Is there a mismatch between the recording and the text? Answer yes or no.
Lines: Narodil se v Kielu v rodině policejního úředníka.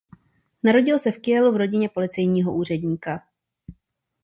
no